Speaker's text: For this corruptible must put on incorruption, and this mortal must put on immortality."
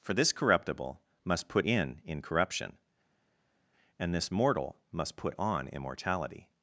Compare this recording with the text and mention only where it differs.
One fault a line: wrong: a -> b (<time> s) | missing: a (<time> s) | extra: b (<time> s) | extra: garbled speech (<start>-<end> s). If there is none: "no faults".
wrong: on -> in (1.6 s)